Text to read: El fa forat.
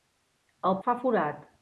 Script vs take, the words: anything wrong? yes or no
no